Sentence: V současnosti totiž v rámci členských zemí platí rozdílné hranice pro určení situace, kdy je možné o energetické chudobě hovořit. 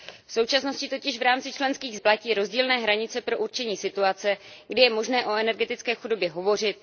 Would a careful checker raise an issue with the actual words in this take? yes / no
yes